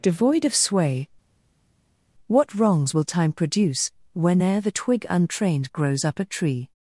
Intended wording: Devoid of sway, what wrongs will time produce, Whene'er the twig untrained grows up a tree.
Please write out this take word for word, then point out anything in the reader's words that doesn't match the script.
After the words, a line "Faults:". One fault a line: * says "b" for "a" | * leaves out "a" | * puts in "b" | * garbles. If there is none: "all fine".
Devoid of sway, what wrongs will time produce, Whene'er the twig untrained grows up a tree.
Faults:
all fine